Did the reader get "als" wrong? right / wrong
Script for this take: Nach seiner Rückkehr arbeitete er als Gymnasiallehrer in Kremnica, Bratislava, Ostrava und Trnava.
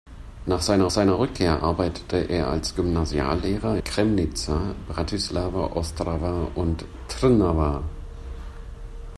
right